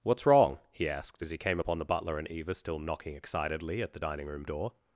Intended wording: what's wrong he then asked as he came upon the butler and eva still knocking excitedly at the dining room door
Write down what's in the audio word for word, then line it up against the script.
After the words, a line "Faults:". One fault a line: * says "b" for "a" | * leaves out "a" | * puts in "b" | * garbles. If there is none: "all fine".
what's wrong he asked as he came upon the butler and eva still knocking excitedly at the dining room door
Faults:
* leaves out "then"